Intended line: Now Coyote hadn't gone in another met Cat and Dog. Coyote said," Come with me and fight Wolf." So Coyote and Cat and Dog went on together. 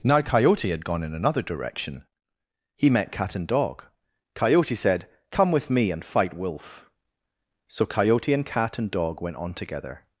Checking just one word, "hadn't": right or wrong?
wrong